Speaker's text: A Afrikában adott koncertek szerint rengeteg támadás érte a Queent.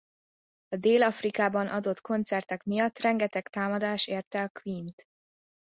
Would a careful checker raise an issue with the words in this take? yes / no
yes